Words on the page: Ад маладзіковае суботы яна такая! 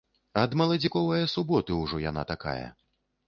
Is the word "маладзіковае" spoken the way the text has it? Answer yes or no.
yes